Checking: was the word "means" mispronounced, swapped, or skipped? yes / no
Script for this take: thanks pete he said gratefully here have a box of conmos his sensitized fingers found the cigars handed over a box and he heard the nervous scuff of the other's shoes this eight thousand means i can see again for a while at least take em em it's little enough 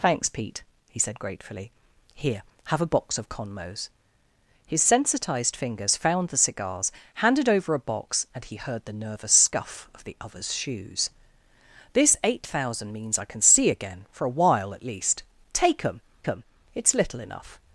no